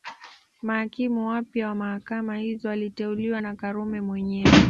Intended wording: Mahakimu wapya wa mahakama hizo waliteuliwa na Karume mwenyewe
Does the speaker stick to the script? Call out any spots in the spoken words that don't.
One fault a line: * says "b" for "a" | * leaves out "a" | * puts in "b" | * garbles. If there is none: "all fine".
all fine